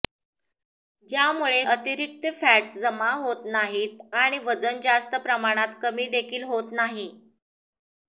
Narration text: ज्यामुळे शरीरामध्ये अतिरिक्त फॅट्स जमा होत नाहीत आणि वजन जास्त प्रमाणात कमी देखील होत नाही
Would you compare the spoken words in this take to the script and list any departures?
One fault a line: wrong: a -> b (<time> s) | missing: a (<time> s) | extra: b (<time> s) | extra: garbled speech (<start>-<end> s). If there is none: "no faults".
missing: शरीरामध्ये (1.6 s)